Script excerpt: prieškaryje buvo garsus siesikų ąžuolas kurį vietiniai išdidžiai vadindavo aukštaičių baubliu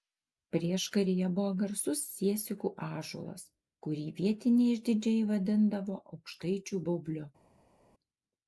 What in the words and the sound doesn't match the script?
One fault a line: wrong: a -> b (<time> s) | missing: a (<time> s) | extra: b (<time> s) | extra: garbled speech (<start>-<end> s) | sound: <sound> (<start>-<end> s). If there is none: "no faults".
no faults